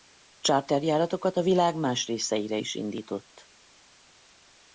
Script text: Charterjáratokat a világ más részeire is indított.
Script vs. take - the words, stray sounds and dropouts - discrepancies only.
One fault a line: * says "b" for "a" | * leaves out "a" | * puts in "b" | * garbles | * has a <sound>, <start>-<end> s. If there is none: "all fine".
all fine